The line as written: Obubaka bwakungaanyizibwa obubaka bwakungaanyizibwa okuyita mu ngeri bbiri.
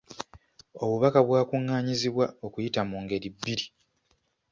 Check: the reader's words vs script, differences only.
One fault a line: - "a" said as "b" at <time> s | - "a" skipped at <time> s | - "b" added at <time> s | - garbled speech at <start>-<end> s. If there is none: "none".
- "obubaka bwakungaanyizibwa" skipped at 2.2 s